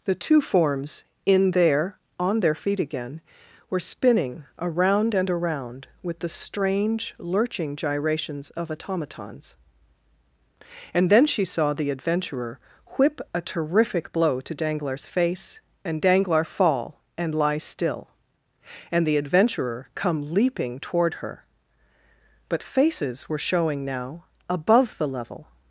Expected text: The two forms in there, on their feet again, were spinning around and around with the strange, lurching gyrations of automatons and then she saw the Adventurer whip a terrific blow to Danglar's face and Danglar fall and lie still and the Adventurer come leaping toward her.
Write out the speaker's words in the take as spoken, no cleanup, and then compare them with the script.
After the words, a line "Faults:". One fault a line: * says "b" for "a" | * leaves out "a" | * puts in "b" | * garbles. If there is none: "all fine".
The two forms in there, on their feet again, were spinning around and around with the strange, lurching gyrations of automatons and then she saw the Adventurer whip a terrific blow to Danglar's face and Danglar fall and lie still and the Adventurer come leaping toward her. But faces were showing now above the level
Faults:
* puts in "But faces were showing now above the level"